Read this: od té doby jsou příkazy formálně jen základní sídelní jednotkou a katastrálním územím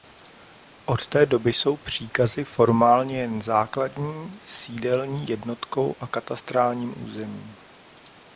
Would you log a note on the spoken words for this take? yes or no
no